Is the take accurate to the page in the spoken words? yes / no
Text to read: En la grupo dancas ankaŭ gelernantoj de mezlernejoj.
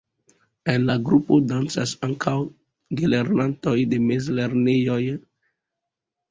yes